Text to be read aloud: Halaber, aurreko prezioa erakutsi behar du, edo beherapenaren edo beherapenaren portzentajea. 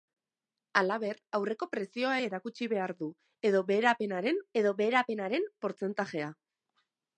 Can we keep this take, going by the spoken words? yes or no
yes